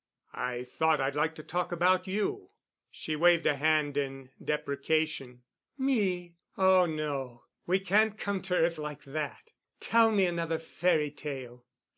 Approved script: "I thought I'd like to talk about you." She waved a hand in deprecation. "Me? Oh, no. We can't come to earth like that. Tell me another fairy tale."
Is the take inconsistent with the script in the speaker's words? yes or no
no